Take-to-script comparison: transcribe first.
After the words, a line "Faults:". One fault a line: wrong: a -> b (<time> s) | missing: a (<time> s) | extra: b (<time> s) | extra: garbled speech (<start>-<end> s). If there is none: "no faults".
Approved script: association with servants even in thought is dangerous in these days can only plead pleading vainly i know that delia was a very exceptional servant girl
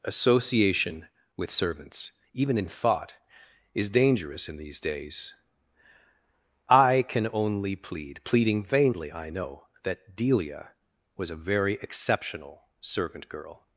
association with servants even in thought is dangerous in these days i can only plead pleading vainly i know that delia was a very exceptional servant girl
Faults:
extra: i (6.7 s)